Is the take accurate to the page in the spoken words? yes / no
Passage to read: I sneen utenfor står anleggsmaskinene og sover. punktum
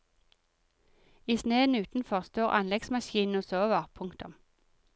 yes